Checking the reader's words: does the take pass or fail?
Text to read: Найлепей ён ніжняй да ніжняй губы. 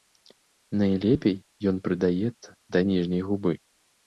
fail